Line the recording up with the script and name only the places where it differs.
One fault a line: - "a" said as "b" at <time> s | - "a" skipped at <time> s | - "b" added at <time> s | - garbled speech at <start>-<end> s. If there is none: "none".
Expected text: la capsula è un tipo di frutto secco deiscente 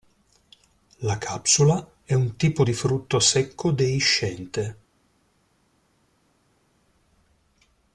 none